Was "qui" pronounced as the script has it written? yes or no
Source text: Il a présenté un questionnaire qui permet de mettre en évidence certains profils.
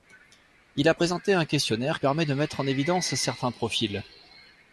no